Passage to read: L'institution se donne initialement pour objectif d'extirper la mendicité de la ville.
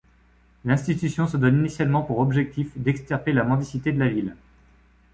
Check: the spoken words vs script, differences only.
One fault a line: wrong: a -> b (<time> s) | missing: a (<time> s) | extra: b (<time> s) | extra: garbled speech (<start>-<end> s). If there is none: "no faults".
no faults